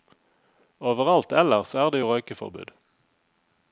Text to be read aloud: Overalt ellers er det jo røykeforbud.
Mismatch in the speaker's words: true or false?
false